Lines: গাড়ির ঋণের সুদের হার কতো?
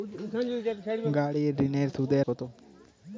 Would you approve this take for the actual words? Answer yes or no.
no